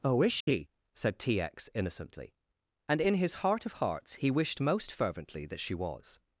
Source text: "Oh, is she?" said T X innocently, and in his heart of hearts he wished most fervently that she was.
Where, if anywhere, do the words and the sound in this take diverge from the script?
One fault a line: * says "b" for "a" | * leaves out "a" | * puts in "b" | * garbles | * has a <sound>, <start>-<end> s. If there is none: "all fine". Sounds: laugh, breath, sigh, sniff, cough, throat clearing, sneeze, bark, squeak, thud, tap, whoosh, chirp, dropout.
* has a dropout, 0.4-0.5 s